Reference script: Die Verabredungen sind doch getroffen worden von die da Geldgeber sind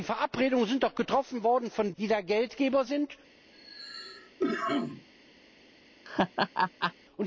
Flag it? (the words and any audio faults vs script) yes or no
yes